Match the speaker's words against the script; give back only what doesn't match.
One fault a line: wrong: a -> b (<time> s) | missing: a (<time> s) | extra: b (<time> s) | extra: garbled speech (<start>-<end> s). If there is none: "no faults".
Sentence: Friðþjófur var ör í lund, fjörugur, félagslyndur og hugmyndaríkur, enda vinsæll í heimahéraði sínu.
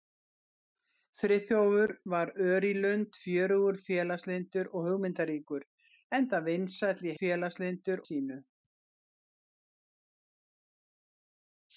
wrong: heimahéraði -> félagslyndur (7.2 s)